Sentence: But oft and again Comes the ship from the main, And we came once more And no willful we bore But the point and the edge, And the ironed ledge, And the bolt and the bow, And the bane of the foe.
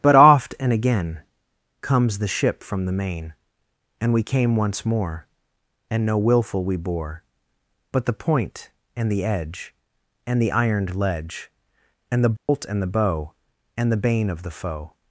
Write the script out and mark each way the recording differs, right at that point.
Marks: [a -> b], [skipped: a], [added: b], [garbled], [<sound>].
But oft and again Comes the ship from the main, And we came once more And no willful we bore But the point and the edge, And the ironed ledge, And the bolt [dropout] and the bow, And the bane of the foe.